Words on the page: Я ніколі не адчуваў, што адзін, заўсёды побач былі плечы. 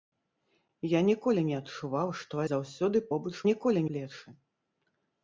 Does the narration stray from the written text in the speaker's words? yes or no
yes